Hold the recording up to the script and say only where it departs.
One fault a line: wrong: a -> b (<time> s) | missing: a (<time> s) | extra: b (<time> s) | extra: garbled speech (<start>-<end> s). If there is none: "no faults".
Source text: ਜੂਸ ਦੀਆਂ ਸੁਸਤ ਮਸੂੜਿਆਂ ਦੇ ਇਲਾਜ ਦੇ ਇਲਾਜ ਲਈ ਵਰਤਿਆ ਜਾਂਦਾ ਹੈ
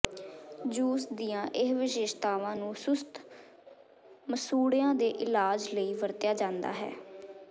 extra: ਇਹ ਵਿਸ਼ੇਸ਼ਤਾਵਾਂ ਨੂੰ (1.6 s)
missing: ਦੇ ਇਲਾਜ (5.7 s)